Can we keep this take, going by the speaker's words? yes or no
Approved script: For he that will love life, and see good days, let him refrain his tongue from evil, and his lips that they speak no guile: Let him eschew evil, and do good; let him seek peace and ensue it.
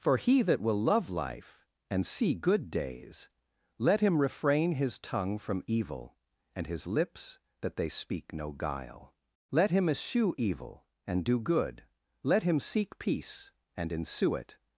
yes